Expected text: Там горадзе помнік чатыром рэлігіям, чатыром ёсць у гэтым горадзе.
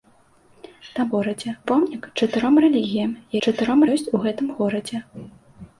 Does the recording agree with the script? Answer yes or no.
yes